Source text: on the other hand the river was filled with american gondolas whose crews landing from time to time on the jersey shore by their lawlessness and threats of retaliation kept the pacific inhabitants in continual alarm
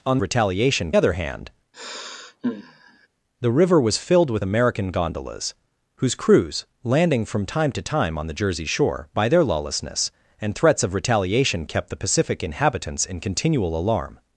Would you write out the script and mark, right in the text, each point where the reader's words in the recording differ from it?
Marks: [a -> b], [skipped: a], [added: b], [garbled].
on [the -> retaliation] other hand the river was filled with american gondolas whose crews landing from time to time on the jersey shore by their lawlessness and threats of retaliation kept the pacific inhabitants in continual alarm